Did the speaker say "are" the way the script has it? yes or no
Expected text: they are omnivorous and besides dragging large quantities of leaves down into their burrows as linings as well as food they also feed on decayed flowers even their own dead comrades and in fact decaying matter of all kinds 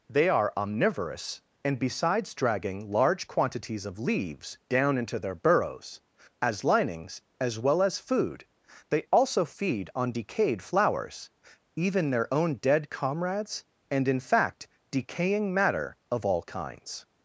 yes